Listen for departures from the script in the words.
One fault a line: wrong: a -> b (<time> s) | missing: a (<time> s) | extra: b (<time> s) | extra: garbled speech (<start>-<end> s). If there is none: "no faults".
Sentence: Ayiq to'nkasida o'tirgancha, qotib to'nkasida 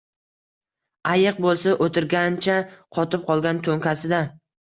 wrong: to'nkasida -> bo'lsa (1.5 s)
extra: qolgan (3.3 s)